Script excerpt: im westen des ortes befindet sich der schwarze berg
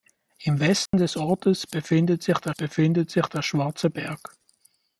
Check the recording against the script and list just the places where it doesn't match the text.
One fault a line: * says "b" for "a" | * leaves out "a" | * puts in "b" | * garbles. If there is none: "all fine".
* puts in "befindet sich der"